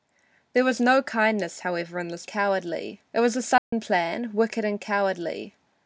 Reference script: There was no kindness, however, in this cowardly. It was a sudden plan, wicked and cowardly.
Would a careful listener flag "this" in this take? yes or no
no